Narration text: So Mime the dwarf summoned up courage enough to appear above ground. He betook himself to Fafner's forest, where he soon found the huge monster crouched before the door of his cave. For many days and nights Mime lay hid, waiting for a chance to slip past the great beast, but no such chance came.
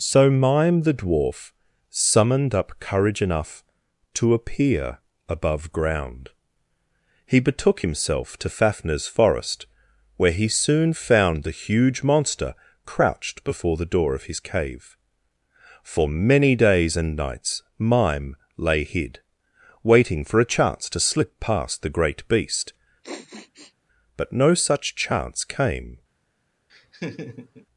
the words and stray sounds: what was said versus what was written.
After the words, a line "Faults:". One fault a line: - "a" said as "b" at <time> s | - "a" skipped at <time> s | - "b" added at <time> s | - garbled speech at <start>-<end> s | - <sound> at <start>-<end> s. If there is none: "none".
So Mime the dwarf summoned up courage enough to appear above ground. He betook himself to Fafner's forest, where he soon found the huge monster crouched before the door of his cave. For many days and nights Mime lay hid, waiting for a chance to slip past the great beast, but no such chance came.
Faults:
- sniff at 23.0-23.7 s
- laugh at 26.7-27.7 s